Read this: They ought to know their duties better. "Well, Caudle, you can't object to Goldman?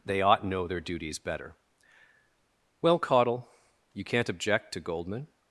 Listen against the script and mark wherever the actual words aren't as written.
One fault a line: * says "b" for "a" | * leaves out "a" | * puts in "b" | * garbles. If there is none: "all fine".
* leaves out "to"